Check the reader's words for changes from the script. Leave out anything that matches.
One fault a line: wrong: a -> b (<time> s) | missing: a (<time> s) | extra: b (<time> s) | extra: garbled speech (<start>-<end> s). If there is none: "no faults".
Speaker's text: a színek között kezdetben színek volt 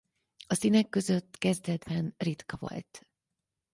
wrong: színek -> ritka (2.2 s)